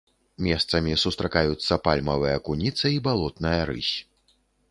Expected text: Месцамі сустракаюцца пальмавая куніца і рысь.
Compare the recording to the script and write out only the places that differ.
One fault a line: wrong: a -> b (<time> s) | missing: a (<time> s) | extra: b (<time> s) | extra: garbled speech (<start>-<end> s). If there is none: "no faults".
extra: балотная (3.1 s)